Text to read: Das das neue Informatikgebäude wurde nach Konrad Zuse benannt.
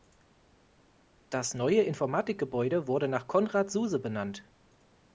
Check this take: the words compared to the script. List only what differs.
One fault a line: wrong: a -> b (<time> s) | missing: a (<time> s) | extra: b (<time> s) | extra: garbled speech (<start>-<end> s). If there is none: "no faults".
missing: das (1.5 s)